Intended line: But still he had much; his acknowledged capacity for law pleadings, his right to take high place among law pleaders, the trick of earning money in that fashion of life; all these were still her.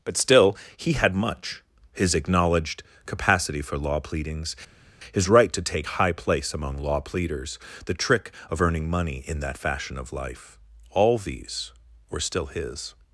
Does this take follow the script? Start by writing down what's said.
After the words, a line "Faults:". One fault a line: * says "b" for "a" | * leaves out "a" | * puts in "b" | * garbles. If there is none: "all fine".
But still he had much; his acknowledged capacity for law pleadings, his right to take high place among law pleaders, the trick of earning money in that fashion of life; all these were still his.
Faults:
* says "his" for "her"